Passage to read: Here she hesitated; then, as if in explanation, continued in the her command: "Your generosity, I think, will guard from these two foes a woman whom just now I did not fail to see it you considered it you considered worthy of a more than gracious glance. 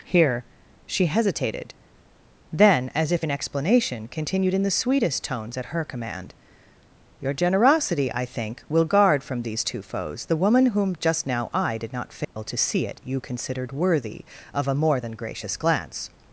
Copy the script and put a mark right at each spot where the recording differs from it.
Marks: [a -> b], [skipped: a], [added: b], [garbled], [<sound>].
Here she hesitated; then, as if in explanation, continued in the [added: sweetest tones at] her command: "Your generosity, I think, will guard from these two foes [a -> the] woman whom just now I did not fail [dropout] to see it you considered [skipped: it you considered] worthy of a more than gracious glance.